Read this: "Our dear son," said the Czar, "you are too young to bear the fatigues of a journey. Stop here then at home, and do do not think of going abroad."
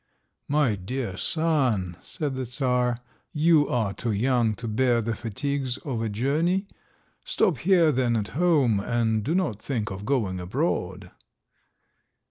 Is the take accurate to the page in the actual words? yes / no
no